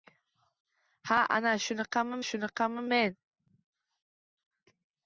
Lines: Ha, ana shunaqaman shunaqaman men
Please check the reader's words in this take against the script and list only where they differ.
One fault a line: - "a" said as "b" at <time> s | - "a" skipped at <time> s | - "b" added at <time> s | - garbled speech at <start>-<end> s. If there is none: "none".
none